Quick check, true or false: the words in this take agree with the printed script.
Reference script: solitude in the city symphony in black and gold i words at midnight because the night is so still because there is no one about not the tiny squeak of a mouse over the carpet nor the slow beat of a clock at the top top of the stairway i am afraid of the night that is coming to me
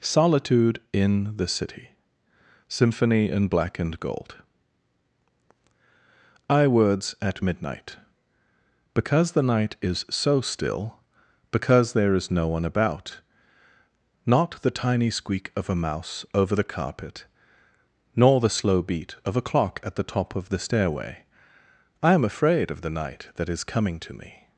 false